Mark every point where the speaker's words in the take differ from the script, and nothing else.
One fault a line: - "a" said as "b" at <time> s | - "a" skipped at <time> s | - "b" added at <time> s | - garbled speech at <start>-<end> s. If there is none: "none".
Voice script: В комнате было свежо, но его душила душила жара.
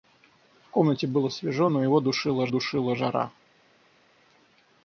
none